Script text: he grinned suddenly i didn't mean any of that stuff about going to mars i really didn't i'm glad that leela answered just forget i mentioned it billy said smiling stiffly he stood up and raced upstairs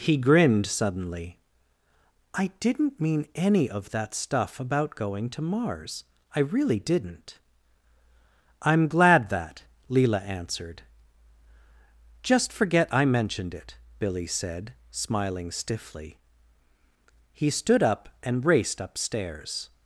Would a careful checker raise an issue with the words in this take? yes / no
no